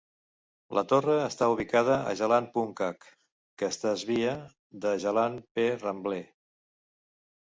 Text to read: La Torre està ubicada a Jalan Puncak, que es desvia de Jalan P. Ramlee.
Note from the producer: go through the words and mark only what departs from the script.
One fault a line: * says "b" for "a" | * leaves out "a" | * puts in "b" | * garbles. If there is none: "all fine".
all fine